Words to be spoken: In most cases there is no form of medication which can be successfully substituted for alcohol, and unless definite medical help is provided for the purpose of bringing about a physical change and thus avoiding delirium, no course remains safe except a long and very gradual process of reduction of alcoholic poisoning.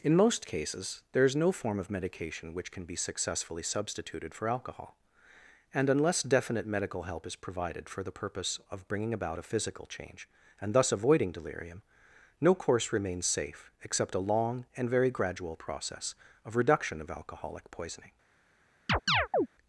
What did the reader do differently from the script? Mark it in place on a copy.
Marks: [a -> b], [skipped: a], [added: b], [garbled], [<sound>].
In most cases there is no form of medication which can be successfully substituted for alcohol, and unless definite medical help is provided for the purpose of bringing about a physical change and thus avoiding delirium, no course remains safe except a long and very gradual process of reduction of alcoholic poisoning. [chirp]